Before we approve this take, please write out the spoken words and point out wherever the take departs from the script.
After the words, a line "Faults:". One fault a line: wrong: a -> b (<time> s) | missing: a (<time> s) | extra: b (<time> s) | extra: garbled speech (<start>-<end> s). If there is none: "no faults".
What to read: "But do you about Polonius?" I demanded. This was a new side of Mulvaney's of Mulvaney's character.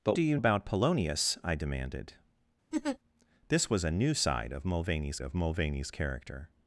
"But do you about Polonius?" I demanded. This was a new side of Mulvaney's of Mulvaney's character.
Faults:
no faults